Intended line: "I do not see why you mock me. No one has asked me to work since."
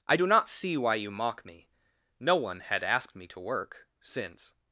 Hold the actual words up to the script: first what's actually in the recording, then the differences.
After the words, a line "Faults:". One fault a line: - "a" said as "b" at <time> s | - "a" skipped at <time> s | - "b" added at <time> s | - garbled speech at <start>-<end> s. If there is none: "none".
"I do not see why you mock me. No one had asked me to work since."
Faults:
- "has" said as "had" at 2.6 s